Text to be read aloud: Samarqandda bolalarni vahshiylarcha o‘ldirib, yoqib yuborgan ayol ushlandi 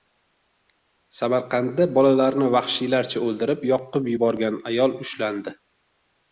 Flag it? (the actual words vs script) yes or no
no